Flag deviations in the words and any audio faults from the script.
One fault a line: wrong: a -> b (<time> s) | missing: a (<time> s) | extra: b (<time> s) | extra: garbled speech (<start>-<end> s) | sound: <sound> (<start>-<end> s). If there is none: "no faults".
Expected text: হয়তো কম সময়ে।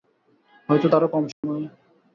extra: তারও (0.9 s)
sound: dropout (1.3-1.4 s)